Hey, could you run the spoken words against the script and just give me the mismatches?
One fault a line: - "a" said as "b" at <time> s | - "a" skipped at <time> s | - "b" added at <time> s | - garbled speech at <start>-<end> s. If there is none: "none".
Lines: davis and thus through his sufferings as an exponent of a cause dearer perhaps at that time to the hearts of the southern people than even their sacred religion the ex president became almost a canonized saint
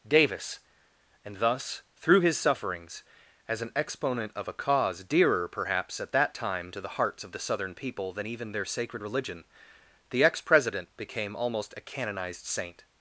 none